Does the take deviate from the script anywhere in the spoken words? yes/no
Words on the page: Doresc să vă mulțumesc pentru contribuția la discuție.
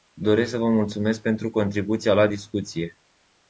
no